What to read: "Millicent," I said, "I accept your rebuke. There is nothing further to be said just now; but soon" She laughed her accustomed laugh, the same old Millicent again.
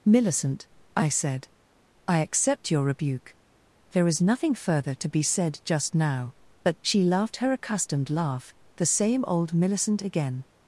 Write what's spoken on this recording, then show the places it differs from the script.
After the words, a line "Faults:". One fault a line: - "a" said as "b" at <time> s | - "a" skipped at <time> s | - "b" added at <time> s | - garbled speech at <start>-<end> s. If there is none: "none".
"Millicent," I said, "I accept your rebuke. There is nothing further to be said just now; but" She laughed her accustomed laugh, the same old Millicent again.
Faults:
- "soon" skipped at 6.8 s